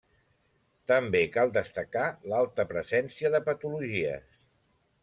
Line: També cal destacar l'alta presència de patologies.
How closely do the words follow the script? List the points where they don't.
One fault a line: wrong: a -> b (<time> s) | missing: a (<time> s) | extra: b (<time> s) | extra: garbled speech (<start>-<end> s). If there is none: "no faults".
no faults